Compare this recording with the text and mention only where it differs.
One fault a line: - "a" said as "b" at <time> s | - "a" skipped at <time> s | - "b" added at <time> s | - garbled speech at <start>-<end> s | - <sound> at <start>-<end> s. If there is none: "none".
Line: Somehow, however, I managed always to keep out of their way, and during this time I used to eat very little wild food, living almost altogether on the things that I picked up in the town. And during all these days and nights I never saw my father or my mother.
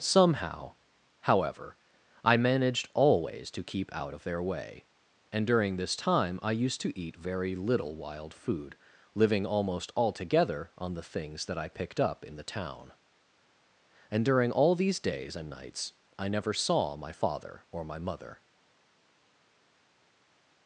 none